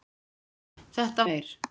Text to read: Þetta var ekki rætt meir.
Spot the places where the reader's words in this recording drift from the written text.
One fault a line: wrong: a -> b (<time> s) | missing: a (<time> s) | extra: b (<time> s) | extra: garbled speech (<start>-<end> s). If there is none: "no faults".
missing: var ekki rætt (1.3 s)